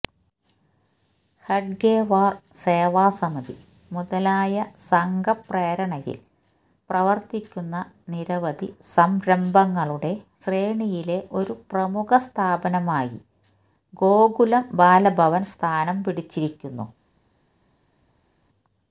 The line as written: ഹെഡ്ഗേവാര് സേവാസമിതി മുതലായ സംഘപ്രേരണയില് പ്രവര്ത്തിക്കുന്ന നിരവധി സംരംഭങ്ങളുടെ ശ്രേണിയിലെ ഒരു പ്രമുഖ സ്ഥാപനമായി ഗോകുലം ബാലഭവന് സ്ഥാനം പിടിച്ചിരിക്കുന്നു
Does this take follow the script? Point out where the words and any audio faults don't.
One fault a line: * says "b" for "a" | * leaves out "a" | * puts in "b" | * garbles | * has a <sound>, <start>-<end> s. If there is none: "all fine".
all fine